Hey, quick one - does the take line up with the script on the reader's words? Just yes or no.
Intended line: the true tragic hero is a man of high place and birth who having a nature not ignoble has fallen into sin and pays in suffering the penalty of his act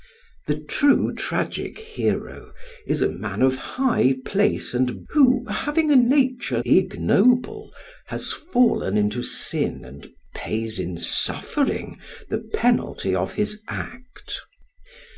no